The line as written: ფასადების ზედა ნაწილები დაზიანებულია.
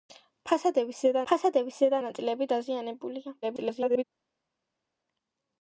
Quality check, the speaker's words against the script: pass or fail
fail